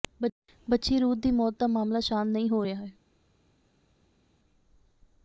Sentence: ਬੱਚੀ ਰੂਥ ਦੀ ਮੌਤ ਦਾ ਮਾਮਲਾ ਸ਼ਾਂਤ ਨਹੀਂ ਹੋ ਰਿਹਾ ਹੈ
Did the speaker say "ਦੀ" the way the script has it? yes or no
yes